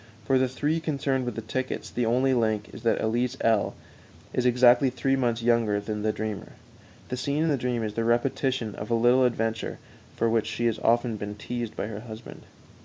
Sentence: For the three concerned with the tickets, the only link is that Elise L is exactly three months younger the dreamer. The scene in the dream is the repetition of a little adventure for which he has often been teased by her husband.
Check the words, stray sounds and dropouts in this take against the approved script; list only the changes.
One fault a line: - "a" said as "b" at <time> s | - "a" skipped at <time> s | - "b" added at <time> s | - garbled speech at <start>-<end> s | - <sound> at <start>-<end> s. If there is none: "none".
- "than" added at 5.8 s
- "he" said as "she" at 10.5 s